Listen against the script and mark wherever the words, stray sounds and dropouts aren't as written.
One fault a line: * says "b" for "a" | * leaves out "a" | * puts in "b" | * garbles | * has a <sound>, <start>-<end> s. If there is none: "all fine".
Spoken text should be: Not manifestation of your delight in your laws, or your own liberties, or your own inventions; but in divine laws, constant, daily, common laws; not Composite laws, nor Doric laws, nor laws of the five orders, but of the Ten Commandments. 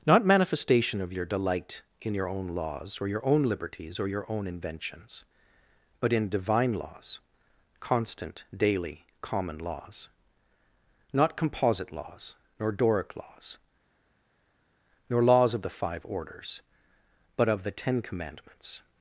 * puts in "own"